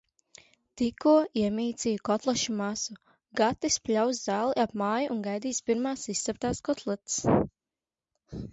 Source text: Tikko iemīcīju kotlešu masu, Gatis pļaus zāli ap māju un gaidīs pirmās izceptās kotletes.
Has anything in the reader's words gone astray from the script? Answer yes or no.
no